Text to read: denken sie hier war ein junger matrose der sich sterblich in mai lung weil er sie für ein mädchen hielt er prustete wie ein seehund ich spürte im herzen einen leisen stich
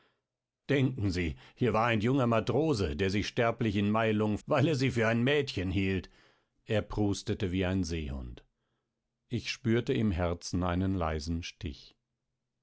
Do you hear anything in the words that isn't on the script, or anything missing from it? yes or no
no